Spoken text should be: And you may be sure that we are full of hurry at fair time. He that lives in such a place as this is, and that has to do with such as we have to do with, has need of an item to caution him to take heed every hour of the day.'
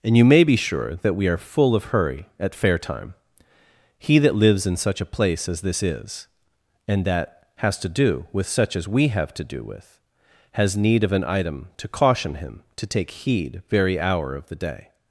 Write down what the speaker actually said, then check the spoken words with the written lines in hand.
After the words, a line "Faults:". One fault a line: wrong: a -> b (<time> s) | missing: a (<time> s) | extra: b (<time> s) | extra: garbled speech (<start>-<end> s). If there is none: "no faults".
And you may be sure that we are full of hurry at fair time. He that lives in such a place as this is, and that has to do with such as we have to do with, has need of an item to caution him to take heed very hour of the day.'
Faults:
wrong: every -> very (13.7 s)